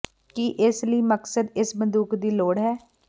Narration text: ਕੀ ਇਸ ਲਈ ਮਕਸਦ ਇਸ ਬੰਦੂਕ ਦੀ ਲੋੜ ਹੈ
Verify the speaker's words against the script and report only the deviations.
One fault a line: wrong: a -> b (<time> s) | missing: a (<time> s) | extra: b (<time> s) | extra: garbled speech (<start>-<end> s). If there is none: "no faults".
no faults